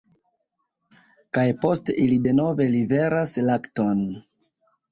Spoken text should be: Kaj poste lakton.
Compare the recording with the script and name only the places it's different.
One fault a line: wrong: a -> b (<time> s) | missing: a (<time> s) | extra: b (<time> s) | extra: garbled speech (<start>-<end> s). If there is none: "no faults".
extra: ili denove liveras (2.1 s)